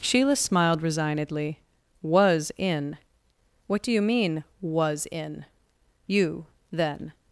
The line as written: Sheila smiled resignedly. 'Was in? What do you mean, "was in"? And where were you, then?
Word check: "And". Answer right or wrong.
wrong